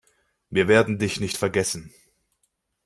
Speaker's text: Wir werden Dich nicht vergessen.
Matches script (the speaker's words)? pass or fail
pass